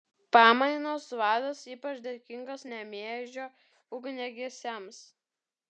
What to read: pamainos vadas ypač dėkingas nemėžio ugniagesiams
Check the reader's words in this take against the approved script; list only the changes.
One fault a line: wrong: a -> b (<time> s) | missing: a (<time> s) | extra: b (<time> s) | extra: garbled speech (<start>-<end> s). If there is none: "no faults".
no faults